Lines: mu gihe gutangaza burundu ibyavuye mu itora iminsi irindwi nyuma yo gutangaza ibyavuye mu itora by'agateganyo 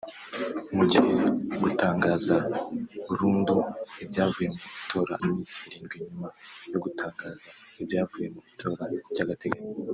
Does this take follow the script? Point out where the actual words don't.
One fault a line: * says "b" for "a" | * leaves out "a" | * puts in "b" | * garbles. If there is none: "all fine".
all fine